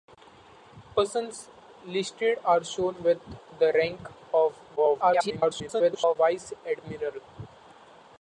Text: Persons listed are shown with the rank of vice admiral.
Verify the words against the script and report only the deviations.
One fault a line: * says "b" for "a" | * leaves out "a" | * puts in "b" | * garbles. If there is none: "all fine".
* garbles